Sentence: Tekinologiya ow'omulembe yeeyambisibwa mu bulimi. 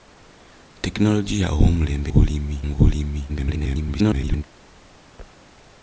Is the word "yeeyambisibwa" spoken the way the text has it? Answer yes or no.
no